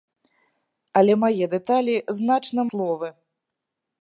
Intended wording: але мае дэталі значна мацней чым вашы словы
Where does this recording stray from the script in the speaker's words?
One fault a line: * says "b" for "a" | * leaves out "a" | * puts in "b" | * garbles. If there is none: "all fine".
* leaves out "мацней чым вашы"